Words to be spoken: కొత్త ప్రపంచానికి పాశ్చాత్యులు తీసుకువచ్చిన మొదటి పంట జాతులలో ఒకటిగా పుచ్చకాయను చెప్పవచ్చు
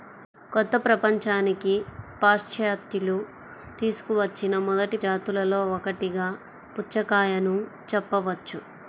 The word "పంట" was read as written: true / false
false